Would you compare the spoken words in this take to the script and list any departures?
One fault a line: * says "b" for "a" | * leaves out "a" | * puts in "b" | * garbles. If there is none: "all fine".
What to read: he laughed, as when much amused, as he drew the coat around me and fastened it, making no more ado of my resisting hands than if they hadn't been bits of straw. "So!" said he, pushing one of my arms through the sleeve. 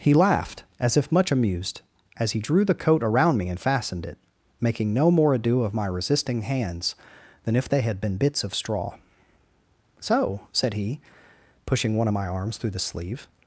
* says "if" for "when"
* says "had" for "hadn't"